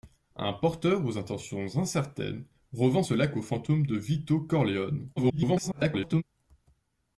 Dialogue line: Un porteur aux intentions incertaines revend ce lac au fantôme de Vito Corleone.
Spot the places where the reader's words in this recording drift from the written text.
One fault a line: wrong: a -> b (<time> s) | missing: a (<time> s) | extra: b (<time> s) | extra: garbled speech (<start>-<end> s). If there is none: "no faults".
extra: garbled speech (5.2-6.2 s)